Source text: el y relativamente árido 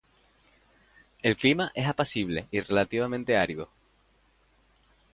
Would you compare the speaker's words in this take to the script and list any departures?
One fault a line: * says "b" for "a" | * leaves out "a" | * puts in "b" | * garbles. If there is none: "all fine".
* puts in "clima es apacible"